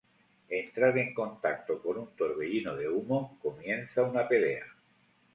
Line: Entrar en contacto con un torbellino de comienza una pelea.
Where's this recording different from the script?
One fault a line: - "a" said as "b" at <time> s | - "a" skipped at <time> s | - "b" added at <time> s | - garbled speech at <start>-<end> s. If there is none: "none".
- "humo" added at 2.9 s